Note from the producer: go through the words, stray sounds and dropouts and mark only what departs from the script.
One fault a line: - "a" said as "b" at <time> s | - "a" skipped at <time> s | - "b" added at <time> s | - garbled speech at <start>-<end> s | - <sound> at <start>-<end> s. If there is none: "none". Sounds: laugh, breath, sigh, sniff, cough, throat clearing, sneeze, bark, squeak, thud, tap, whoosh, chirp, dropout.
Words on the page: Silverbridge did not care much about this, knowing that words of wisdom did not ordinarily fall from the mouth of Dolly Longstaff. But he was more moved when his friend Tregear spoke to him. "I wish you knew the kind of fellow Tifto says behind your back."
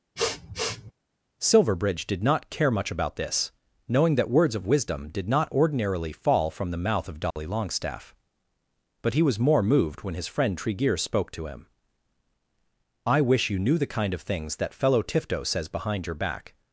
- sniff at 0.2-0.9 s
- dropout at 7.3-7.4 s
- "things that" added at 14.2 s